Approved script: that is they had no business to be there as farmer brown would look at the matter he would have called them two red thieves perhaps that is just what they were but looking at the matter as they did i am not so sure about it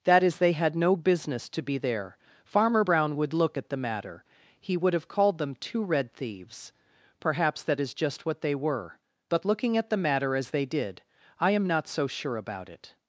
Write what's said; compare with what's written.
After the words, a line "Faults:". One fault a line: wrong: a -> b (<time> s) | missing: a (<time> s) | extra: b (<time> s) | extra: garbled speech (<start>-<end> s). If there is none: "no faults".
that is they had no business to be there farmer brown would look at the matter he would have called them two red thieves perhaps that is just what they were but looking at the matter as they did i am not so sure about it
Faults:
missing: as (2.2 s)